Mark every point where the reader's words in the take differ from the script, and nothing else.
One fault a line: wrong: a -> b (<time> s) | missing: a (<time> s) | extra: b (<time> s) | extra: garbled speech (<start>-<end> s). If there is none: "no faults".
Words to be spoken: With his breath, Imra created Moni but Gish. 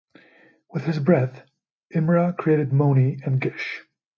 wrong: but -> and (3.2 s)